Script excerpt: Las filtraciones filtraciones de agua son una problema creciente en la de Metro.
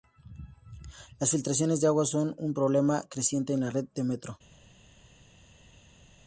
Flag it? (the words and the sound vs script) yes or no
yes